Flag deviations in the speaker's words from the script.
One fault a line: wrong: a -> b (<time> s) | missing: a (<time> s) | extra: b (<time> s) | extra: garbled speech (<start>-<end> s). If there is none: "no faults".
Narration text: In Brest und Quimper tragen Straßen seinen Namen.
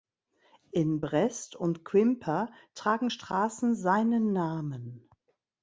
no faults